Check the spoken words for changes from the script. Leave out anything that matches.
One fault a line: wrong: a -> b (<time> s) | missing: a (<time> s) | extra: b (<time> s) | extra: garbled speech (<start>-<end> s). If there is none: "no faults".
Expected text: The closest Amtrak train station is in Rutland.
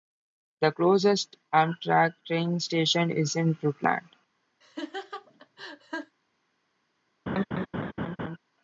no faults